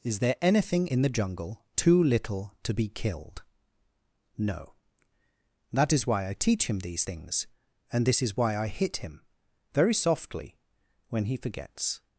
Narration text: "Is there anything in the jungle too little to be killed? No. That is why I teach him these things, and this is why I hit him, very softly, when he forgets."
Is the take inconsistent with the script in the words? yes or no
no